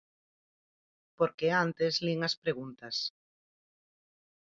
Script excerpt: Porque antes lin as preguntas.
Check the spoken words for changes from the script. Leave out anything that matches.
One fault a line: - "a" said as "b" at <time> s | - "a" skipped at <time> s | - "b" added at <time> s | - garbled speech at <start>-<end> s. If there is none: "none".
none